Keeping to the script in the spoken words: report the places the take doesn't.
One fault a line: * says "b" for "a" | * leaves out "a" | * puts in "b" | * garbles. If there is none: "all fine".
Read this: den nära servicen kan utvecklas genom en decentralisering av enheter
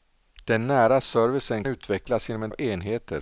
* leaves out "kan"
* leaves out "decentralisering"